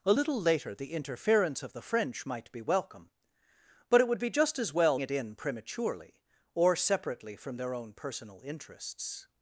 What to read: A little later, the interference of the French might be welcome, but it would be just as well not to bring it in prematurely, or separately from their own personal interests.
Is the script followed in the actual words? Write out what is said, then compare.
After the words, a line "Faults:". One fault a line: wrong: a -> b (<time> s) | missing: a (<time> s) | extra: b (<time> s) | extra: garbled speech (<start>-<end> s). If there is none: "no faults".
A little later, the interference of the French might be welcome, but it would be just as well it in prematurely, or separately from their own personal interests.
Faults:
missing: not to bring (5.0 s)